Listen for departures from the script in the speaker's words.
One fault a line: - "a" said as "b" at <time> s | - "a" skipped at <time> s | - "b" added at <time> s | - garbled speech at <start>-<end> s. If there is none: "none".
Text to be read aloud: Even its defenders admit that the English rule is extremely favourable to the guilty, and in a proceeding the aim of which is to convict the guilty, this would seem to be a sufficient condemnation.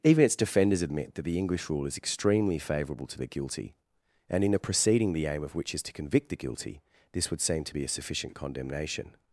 none